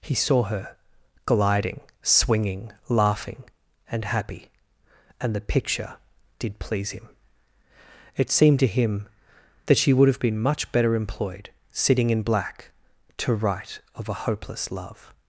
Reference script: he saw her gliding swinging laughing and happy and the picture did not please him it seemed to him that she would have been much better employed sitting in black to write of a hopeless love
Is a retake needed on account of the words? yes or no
yes